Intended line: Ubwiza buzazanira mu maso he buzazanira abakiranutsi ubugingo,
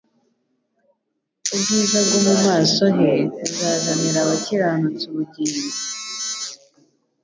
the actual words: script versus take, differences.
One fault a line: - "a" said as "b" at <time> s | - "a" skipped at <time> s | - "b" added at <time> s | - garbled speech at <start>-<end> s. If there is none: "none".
- "buzazanira" said as "bwo" at 2.0 s